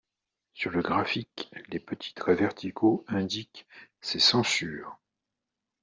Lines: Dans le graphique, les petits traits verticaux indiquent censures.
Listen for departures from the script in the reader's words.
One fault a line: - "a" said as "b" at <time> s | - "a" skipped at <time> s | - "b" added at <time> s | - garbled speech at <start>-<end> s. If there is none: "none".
- "Dans" said as "Sur" at 0.5 s
- "ces" added at 4.0 s